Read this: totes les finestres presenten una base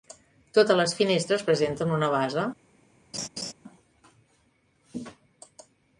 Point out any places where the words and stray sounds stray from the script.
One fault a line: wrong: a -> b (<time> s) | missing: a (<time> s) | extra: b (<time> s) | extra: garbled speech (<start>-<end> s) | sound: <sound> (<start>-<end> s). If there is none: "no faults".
sound: laugh (3.1-3.5 s)